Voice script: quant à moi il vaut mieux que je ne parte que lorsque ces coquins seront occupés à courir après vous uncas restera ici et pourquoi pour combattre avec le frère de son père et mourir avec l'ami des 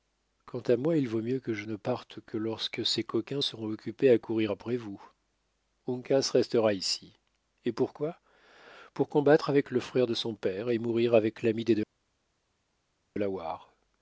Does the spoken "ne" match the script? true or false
true